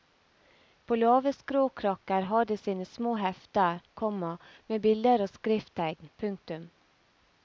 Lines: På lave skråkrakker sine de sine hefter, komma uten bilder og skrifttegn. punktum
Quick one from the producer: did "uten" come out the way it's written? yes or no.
no